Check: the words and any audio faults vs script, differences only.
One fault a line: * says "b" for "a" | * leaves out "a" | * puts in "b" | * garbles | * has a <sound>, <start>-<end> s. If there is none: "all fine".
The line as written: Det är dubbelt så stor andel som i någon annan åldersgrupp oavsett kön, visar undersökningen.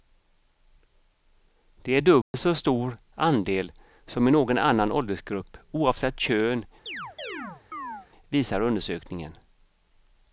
* has a dropout, 2.2-2.3 s
* has a chirp, 6.9-8.1 s